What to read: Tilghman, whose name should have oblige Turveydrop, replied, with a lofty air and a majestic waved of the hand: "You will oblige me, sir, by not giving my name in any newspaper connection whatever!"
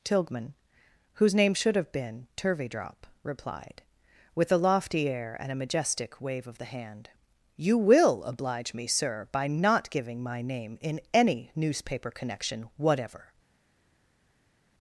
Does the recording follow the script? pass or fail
fail